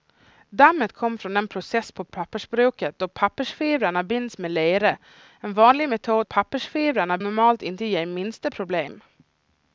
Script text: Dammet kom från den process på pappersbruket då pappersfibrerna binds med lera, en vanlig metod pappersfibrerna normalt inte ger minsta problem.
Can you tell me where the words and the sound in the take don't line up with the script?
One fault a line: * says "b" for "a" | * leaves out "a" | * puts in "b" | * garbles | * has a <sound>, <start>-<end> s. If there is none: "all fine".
all fine